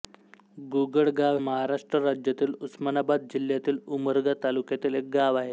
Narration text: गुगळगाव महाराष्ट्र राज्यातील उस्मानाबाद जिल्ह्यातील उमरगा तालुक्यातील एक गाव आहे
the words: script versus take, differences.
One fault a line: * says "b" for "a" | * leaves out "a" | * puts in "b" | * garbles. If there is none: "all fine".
all fine